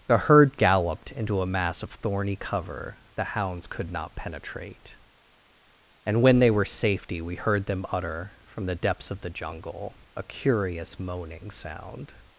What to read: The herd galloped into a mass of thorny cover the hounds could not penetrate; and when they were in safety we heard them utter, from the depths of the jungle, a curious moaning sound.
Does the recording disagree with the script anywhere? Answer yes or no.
yes